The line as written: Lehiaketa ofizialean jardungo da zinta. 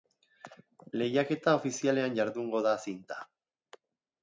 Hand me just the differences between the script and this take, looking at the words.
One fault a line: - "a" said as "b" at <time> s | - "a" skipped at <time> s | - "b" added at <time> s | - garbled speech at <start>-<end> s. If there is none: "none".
none